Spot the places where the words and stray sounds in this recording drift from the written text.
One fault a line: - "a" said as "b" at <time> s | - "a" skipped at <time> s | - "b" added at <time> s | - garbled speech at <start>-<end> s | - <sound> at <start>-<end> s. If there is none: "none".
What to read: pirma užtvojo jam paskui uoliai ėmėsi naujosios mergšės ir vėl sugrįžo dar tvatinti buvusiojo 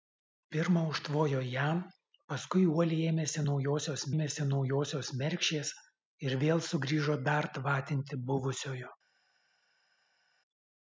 - "ėmėsi naujosios" added at 4.1 s